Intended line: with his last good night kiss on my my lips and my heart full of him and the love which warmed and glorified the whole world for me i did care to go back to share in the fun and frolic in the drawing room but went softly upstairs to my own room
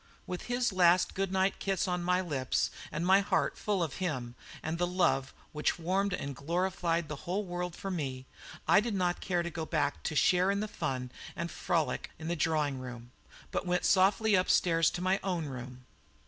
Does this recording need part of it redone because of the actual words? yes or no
yes